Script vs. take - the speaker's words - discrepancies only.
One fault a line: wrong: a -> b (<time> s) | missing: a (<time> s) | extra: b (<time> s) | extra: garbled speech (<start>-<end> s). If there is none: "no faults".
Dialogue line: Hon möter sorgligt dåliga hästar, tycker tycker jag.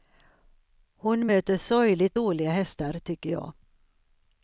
missing: tycker (3.3 s)